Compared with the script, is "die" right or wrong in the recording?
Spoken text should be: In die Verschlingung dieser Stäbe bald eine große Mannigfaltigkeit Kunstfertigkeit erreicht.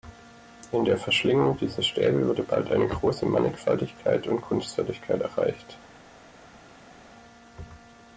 wrong